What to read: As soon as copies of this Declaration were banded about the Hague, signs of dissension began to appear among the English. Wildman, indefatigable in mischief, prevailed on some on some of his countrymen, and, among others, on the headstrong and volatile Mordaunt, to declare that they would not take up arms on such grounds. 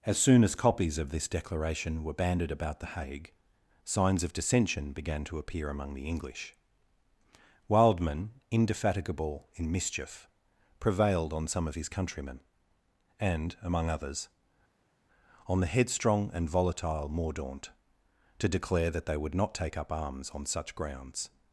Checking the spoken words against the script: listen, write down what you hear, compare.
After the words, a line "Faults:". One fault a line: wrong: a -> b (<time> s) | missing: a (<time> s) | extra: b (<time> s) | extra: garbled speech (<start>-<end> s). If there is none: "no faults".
As soon as copies of this Declaration were banded about the Hague, signs of dissension began to appear among the English. Wildman, indefatigable in mischief, prevailed on some of his countrymen, and, among others, on the headstrong and volatile Mordaunt, to declare that they would not take up arms on such grounds.
Faults:
missing: on some (11.7 s)